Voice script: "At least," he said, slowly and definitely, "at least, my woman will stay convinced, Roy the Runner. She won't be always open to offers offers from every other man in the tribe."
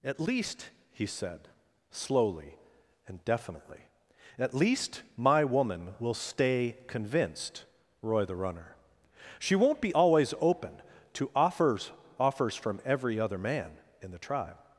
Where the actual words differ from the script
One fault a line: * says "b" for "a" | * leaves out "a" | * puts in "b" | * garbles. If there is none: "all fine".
all fine